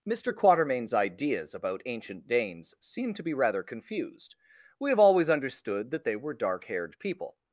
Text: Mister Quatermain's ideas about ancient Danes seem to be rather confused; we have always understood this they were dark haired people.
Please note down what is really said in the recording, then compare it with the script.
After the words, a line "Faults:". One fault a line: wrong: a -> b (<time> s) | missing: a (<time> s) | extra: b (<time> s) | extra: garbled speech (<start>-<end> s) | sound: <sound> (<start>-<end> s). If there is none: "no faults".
Mister Quatermain's ideas about ancient Danes seem to be rather confused; we have always understood that they were dark haired people.
Faults:
wrong: this -> that (5.9 s)